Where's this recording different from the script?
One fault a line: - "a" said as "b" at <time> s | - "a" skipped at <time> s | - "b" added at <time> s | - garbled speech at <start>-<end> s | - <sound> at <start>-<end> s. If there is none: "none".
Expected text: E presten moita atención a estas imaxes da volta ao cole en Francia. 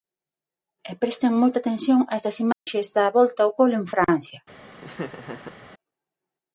- dropout at 2.5-2.7 s
- laugh at 4.8-5.6 s